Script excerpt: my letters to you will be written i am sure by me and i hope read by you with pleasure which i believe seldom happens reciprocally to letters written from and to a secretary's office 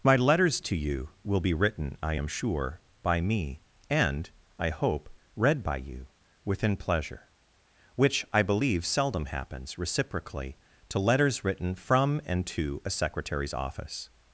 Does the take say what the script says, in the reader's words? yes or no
no